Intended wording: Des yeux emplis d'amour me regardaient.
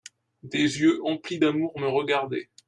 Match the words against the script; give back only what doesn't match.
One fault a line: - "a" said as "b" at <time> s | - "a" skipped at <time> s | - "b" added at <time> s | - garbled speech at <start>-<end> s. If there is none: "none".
none